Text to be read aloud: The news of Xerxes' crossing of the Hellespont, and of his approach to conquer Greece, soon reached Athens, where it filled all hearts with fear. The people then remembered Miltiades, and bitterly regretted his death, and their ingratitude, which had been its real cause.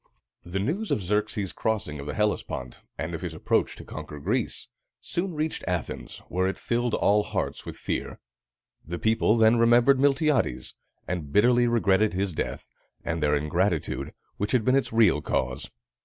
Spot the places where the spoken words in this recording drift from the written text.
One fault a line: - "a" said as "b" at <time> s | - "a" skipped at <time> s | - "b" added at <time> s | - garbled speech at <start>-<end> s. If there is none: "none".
none